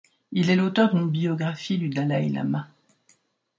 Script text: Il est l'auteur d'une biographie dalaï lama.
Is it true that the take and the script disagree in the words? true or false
true